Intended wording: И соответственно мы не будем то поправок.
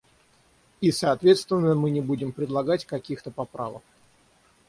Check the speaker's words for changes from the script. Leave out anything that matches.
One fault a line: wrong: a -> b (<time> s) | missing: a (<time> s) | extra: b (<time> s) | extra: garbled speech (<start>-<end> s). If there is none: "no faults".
extra: предлагать каких (2.3 s)